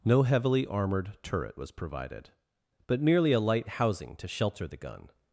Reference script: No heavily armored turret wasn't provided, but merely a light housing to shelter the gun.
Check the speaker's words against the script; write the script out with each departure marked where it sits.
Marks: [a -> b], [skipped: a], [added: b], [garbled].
No heavily armored turret [wasn't -> was] provided, but merely a light housing to shelter the gun.